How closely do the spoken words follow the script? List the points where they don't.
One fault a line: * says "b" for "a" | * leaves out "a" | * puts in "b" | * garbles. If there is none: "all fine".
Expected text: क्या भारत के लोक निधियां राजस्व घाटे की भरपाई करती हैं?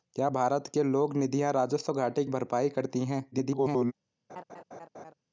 * leaves out "की"
* garbles